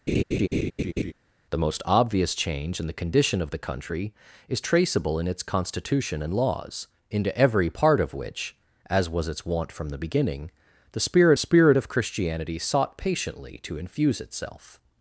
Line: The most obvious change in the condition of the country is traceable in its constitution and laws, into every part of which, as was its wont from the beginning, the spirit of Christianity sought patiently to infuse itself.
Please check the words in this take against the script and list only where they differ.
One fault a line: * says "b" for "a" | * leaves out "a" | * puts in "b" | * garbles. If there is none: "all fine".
* puts in "spirit"